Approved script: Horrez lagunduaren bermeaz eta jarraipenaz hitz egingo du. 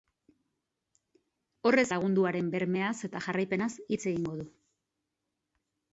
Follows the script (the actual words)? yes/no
yes